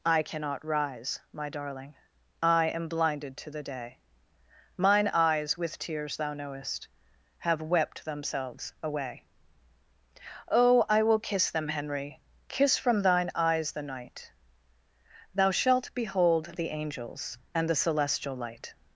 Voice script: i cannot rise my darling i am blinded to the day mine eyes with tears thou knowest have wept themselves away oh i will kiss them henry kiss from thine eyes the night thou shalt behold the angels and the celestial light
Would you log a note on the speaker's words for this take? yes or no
no